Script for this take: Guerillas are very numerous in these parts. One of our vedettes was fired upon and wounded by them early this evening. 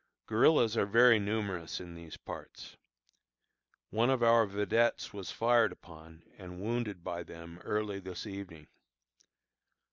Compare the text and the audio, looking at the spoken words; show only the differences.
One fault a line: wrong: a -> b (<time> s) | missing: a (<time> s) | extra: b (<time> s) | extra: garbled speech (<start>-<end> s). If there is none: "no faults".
no faults